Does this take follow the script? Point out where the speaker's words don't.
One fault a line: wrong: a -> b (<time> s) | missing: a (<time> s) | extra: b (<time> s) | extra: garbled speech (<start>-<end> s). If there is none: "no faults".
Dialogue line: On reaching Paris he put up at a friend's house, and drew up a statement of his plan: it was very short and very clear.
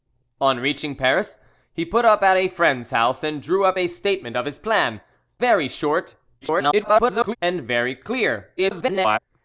missing: it was (5.0 s)
extra: garbled speech (6.4-7.4 s)
extra: garbled speech (8.6-9.2 s)